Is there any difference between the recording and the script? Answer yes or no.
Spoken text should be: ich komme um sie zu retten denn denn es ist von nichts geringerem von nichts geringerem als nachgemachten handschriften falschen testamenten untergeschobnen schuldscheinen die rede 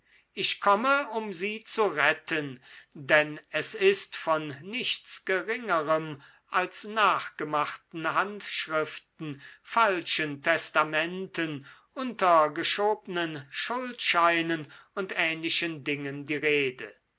yes